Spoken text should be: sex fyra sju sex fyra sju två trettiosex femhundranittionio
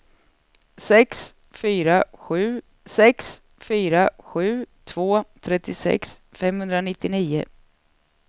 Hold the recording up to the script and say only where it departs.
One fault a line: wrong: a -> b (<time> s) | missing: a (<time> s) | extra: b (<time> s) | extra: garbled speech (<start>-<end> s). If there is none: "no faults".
no faults